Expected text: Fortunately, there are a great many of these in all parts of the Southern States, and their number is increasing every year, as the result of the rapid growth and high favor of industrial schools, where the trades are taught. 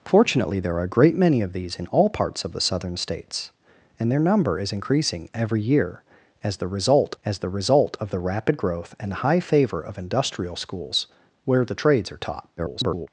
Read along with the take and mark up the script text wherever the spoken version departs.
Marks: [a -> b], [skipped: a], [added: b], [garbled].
Fortunately, there are a great many of these in all parts of the Southern States, and their number is increasing every year, as the result [added: as the result] of the rapid growth and high favor of industrial schools, where the trades are taught. [garbled]